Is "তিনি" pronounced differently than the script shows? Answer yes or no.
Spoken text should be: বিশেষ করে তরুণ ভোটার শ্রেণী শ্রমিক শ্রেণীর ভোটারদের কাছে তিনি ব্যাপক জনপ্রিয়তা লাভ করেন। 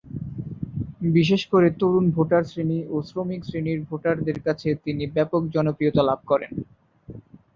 no